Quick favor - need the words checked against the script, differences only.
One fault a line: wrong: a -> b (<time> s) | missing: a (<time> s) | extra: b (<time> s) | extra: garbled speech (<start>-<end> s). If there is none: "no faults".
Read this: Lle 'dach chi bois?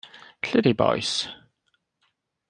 missing: dach (0.6 s)